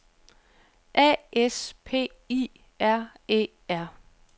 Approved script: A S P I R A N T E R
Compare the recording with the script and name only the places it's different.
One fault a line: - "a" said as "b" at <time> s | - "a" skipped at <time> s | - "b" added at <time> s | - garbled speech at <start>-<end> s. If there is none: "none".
- "A N T" skipped at 3.1 s